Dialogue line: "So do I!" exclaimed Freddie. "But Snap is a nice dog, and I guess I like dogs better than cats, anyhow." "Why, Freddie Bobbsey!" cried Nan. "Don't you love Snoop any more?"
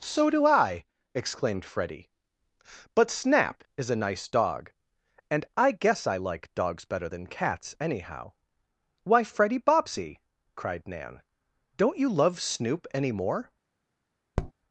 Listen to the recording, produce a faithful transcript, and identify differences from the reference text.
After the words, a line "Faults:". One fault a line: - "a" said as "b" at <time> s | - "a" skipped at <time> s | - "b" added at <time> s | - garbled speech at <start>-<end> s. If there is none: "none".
"So do I!" exclaimed Freddie. "But Snap is a nice dog, and I guess I like dogs better than cats, anyhow." "Why, Freddie Bobbsey!" cried Nan. "Don't you love Snoop any more?"
Faults:
none